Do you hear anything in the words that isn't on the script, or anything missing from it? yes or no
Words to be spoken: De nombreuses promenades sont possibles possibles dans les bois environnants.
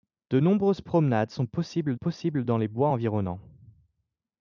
no